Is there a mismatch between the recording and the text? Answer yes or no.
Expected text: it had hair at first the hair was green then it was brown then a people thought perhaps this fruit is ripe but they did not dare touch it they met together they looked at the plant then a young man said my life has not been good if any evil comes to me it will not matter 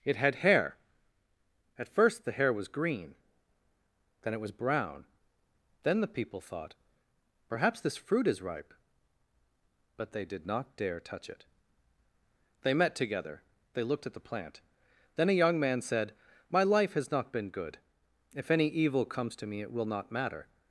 yes